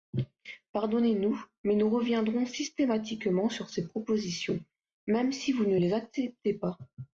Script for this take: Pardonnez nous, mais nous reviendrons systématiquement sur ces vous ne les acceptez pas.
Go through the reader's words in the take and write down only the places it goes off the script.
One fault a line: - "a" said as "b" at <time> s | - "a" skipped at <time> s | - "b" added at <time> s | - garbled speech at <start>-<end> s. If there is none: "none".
- "propositions même si" added at 3.8 s